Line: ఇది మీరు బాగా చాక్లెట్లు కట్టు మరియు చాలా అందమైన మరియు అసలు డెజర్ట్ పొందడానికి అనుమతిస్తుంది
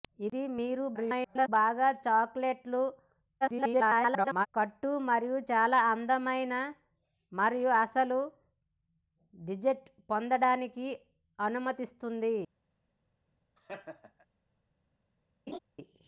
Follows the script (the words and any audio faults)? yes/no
no